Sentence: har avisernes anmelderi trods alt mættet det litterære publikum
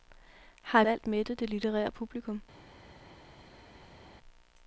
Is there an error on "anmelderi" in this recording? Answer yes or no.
yes